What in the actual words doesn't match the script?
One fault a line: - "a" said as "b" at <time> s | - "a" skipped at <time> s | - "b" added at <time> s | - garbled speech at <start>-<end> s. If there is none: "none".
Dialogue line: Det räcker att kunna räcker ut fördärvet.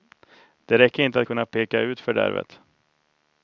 - "inte" added at 1.0 s
- "räcker" said as "peka" at 1.5 s